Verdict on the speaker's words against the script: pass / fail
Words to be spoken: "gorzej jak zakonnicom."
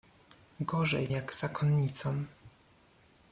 pass